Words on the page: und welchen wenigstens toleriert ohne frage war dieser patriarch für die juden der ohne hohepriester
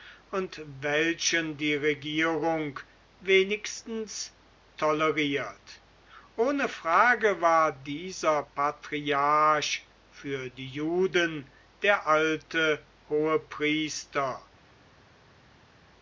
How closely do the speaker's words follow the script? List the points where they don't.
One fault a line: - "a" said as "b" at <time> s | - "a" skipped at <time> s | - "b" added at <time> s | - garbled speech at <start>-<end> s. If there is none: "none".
- "die regierung" added at 1.6 s
- "ohne" said as "alte" at 12.1 s